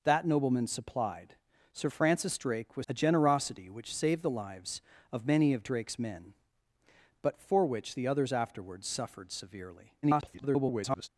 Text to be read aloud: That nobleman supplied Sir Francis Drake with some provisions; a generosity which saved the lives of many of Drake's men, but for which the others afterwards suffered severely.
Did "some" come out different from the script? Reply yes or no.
yes